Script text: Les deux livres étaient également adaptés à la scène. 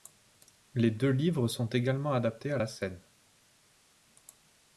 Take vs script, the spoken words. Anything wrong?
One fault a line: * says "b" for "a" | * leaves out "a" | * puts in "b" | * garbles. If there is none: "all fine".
* says "sont" for "étaient"